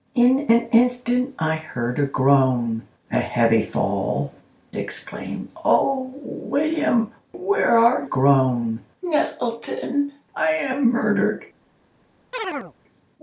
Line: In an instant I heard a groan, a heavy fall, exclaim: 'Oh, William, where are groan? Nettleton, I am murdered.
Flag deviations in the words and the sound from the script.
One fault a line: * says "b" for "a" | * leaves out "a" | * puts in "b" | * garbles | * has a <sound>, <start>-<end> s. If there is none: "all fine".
* has a chirp, 12.3-12.7 s